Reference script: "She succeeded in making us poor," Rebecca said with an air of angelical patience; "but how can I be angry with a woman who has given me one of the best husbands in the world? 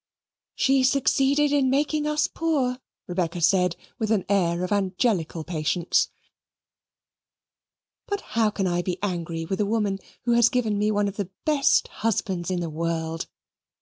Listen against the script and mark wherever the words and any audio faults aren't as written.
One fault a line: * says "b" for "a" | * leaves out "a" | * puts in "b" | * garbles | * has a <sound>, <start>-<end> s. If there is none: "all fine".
all fine